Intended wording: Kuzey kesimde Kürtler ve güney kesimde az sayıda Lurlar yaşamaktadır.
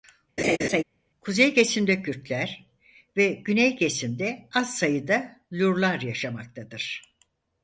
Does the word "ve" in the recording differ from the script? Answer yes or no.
no